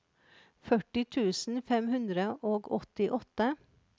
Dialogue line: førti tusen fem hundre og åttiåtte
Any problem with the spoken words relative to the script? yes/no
no